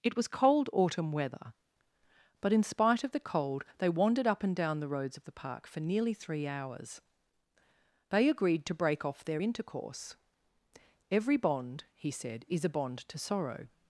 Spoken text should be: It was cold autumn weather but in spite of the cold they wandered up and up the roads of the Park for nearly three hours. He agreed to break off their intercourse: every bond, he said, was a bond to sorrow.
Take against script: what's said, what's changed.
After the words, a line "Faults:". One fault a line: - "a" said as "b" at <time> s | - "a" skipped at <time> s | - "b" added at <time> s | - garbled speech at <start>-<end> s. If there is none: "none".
It was cold autumn weather but in spite of the cold they wandered up and down the roads of the Park for nearly three hours. They agreed to break off their intercourse: every bond, he said, is a bond to sorrow.
Faults:
- "up" said as "down" at 4.6 s
- "He" said as "They" at 8.1 s
- "was" said as "is" at 12.5 s